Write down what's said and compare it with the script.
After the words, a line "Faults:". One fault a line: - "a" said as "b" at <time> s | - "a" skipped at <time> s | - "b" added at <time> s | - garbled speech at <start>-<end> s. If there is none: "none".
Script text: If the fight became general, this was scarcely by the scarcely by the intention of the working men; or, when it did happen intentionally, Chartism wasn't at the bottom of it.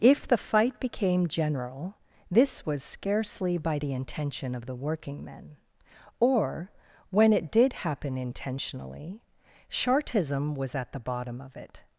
If the fight became general, this was scarcely by the intention of the working men; or, when it did happen intentionally, Chartism was at the bottom of it.
Faults:
- "scarcely by the" skipped at 3.9 s
- "wasn't" said as "was" at 10.6 s